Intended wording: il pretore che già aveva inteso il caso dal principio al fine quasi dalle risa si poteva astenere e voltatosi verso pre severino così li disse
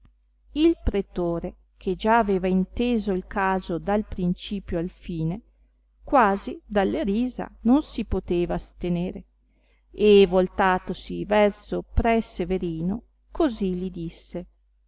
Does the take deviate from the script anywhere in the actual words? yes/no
yes